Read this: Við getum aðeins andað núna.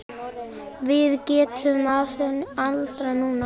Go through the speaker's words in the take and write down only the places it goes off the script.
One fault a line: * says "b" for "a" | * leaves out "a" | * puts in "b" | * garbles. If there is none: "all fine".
all fine